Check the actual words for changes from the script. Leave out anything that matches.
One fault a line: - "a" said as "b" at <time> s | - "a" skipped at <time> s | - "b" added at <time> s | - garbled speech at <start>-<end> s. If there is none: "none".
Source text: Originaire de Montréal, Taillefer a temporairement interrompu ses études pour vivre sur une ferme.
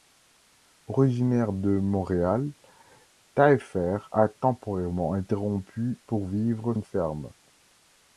- "ses études" skipped at 6.0 s
- "sur" skipped at 6.8 s